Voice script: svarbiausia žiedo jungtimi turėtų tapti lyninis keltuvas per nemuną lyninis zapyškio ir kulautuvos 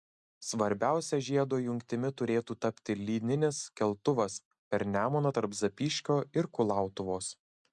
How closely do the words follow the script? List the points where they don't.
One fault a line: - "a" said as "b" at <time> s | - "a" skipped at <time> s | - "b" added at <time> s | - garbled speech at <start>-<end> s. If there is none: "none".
- "lyninis" said as "tarp" at 5.4 s